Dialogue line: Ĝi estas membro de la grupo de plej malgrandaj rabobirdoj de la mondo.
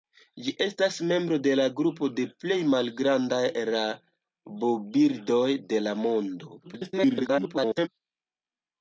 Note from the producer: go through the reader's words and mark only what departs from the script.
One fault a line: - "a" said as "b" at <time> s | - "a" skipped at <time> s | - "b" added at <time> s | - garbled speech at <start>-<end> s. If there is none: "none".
- garbled speech at 6.6-7.9 s